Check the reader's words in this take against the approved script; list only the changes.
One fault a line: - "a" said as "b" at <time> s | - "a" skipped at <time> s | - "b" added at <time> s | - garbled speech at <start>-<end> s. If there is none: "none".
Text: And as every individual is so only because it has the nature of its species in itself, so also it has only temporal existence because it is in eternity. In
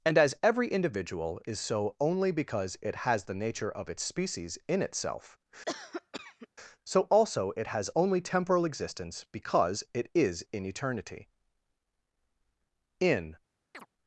none